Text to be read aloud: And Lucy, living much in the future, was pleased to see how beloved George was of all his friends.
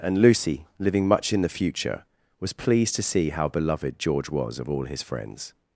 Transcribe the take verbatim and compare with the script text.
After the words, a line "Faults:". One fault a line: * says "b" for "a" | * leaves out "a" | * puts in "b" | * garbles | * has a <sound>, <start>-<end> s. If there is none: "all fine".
And Lucy, living much in the future, was pleased to see how beloved George was of all his friends.
Faults:
all fine